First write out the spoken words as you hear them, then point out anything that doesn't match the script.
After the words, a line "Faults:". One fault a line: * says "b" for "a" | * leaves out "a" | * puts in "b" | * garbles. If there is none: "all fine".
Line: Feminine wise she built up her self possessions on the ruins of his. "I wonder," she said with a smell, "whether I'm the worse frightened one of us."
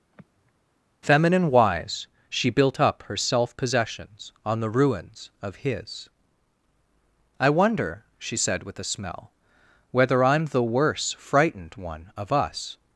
Feminine wise she built up her self possessions on the ruins of his. "I wonder," she said with a smell, "whether I'm the worse frightened one of us."
Faults:
all fine